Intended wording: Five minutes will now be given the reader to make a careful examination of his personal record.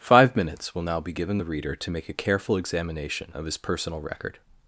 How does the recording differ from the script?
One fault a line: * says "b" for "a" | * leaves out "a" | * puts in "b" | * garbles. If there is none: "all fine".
all fine